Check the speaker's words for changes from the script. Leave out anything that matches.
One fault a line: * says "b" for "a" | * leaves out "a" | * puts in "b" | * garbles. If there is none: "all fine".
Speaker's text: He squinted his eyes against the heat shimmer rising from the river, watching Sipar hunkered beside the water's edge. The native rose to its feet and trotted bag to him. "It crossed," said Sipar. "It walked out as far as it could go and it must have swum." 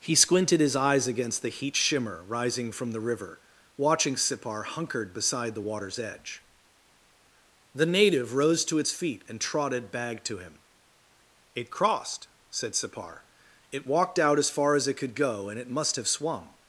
all fine